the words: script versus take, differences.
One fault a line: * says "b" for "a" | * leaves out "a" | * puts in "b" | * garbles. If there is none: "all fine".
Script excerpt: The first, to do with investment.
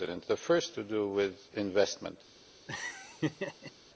all fine